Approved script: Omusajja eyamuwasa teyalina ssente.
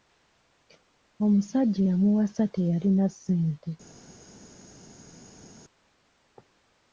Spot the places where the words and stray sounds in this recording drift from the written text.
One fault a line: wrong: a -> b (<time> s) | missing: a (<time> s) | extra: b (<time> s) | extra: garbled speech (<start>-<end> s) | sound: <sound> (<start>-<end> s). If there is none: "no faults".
no faults